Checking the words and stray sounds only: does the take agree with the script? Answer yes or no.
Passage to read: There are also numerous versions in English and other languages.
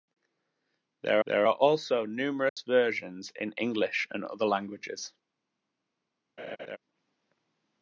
no